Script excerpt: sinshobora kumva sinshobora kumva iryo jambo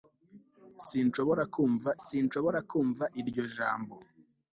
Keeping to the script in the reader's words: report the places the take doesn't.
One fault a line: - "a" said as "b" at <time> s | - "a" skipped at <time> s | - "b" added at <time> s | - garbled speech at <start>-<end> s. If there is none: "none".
none